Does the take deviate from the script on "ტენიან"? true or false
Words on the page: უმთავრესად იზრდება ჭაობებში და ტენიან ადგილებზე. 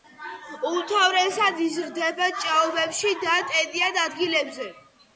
false